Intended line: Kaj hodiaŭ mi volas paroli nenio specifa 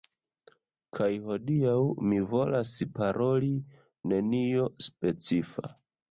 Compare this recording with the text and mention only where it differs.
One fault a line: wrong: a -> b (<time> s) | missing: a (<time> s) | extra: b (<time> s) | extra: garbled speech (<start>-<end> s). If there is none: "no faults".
no faults